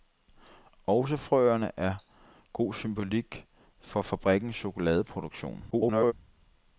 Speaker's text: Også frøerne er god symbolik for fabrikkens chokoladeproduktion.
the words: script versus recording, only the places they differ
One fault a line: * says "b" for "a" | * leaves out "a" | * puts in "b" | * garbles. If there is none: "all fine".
* garbles